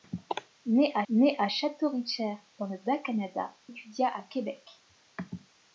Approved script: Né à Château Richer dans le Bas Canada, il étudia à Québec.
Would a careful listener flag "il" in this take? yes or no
yes